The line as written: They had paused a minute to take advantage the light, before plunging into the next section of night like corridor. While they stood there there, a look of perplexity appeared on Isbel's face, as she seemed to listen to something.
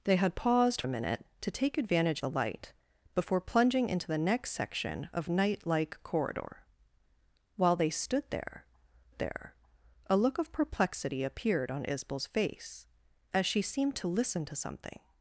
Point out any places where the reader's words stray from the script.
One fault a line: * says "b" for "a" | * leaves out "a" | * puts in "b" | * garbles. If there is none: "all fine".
all fine